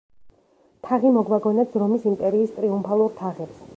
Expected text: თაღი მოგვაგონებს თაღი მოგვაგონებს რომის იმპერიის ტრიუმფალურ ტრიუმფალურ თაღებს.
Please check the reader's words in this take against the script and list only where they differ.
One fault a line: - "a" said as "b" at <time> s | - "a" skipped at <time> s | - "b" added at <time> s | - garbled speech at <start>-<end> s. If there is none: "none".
- "თაღი მოგვაგონებს" skipped at 1.8 s
- "ტრიუმფალურ" skipped at 3.1 s